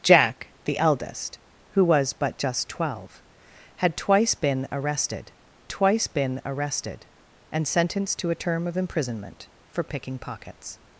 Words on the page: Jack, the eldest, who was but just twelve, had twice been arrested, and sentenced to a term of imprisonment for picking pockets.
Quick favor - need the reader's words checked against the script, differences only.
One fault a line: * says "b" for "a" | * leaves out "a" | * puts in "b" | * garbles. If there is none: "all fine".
* puts in "twice been arrested"